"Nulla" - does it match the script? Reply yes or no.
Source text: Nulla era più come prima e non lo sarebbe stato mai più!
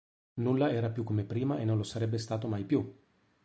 yes